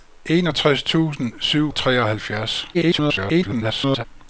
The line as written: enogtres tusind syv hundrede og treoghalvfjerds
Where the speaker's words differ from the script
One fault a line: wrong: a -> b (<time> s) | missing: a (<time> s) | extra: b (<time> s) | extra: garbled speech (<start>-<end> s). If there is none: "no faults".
missing: hundrede (1.7 s)
extra: garbled speech (2.7-4.0 s)